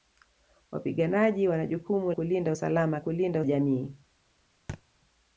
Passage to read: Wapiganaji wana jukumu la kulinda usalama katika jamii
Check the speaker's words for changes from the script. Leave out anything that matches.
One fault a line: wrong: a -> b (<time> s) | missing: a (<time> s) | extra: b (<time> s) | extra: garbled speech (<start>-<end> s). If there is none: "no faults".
missing: la (2.1 s)
wrong: katika -> kulinda (3.0 s)